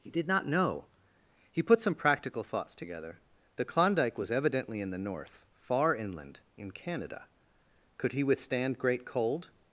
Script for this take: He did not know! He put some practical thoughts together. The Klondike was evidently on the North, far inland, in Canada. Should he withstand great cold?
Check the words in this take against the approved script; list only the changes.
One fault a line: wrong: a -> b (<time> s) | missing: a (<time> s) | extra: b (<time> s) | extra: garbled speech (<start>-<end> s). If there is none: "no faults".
wrong: on -> in (4.8 s)
wrong: Should -> Could (8.0 s)